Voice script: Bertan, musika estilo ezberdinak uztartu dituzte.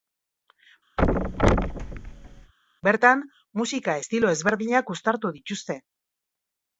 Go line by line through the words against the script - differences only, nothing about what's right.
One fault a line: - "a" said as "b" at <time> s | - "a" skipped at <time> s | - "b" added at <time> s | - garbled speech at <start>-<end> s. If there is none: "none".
none